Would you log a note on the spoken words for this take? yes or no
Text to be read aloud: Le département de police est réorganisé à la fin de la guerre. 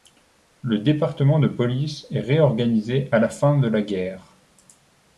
no